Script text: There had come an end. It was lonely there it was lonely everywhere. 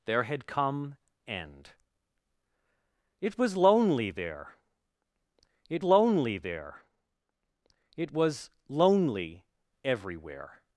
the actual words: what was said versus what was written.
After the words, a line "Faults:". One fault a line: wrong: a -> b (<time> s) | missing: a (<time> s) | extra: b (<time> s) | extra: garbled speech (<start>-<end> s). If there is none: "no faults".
There had come end. It was lonely there it lonely there it was lonely everywhere.
Faults:
missing: an (1.0 s)
extra: lonely there it (5.8 s)